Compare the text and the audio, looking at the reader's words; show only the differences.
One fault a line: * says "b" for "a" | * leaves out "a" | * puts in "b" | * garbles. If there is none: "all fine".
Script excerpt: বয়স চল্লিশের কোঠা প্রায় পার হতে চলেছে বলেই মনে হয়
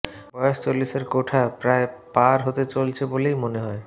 all fine